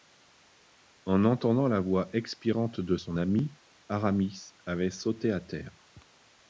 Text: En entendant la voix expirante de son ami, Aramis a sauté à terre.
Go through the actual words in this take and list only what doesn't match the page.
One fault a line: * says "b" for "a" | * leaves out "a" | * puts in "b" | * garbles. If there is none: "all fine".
* says "avait" for "a"